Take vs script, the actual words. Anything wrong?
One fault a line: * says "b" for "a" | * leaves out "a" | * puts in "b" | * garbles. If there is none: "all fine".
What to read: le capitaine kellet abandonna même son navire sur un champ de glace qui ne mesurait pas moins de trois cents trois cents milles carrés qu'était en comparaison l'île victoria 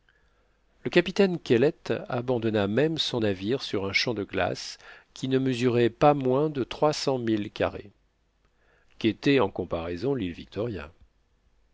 * leaves out "trois cents"